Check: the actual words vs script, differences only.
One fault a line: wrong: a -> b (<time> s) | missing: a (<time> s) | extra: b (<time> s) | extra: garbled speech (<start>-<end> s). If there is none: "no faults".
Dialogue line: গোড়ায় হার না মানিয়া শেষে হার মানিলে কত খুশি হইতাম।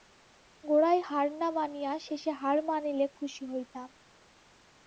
missing: কত (3.1 s)